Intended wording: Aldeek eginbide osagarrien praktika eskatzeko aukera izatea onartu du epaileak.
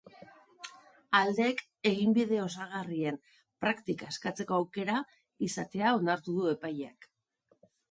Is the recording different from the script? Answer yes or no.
no